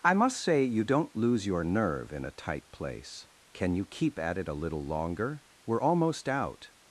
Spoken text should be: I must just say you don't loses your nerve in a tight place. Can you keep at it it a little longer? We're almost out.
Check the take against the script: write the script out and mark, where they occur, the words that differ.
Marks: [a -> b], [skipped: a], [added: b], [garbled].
I must [skipped: just] say you don't [loses -> lose] your nerve in a tight place. Can you keep at it [skipped: it] a little longer? We're almost out.